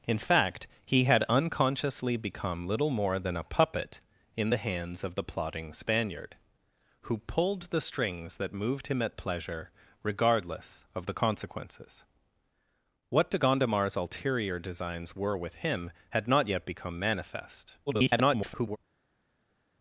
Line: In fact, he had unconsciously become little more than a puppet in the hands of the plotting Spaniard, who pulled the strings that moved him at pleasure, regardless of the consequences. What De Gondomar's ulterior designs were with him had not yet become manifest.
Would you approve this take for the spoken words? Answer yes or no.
no